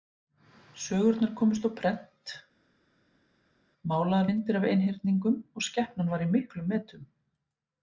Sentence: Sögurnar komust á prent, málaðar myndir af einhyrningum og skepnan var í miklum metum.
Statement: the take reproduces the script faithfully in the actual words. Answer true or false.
true